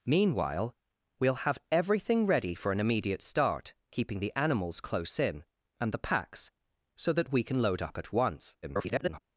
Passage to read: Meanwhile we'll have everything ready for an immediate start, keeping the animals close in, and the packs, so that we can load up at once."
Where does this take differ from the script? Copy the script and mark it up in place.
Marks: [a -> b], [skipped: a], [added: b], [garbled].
Meanwhile we'll have everything ready for an immediate start, keeping the animals close in, and the packs, so that we can load up at once." [garbled]